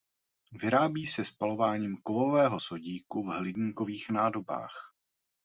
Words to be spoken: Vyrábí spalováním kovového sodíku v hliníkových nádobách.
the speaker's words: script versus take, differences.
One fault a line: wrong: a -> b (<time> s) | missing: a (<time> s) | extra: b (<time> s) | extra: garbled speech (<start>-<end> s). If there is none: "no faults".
extra: se (1.1 s)